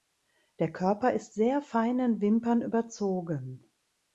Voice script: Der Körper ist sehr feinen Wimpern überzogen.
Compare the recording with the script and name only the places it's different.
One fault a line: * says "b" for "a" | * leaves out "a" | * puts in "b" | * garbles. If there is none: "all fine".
all fine